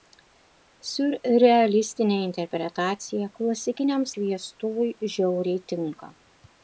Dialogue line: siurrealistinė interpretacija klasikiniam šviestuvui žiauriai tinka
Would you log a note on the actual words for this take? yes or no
no